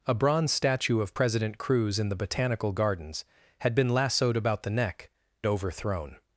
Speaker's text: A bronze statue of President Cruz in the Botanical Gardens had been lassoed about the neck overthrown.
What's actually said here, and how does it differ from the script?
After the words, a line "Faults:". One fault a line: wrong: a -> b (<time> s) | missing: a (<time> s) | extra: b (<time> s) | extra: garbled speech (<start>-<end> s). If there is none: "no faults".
A bronze statue of President Cruz in the Botanical Gardens had been lassoed about the neck overthrown.
Faults:
no faults